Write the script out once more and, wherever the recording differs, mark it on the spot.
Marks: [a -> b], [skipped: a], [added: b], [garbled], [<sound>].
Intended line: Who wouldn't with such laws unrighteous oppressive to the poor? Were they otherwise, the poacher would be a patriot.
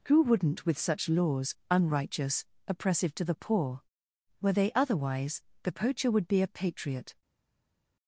Who wouldn't with such laws unrighteous oppressive to the poor? Were they otherwise, the poacher would be a patriot.